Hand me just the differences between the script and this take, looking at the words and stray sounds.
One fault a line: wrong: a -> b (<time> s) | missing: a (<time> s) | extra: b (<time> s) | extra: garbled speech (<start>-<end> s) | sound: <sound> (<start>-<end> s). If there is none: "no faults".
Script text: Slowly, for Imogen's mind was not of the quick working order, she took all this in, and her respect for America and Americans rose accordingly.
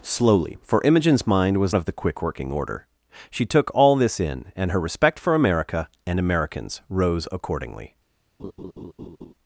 missing: not (1.8 s)
sound: laugh (8.4-9.3 s)